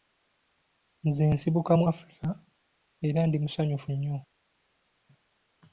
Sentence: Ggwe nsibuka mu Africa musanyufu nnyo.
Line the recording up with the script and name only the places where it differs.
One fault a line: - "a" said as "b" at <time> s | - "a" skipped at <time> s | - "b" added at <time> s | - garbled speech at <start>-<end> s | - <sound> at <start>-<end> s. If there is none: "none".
- "Ggwe" said as "Nze" at 1.1 s
- "era ndi" added at 3.1 s